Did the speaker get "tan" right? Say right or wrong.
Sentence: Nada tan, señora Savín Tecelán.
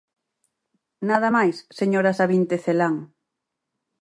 wrong